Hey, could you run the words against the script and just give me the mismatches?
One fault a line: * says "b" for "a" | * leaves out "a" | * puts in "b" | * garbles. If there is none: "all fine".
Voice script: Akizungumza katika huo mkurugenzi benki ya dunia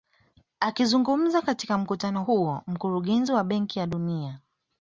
* puts in "mkutano"
* puts in "wa"